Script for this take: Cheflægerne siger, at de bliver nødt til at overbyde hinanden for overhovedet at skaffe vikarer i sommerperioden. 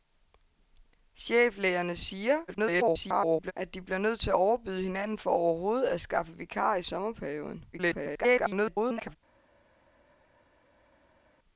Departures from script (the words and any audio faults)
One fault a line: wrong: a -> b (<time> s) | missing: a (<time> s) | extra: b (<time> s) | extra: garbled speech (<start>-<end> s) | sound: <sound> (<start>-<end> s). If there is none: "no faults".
extra: garbled speech (2.5-3.5 s)
extra: garbled speech (7.7-9.2 s)